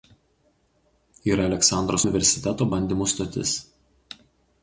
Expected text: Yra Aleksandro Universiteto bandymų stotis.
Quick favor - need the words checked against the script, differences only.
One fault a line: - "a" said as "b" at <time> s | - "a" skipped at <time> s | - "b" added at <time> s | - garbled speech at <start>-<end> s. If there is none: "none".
none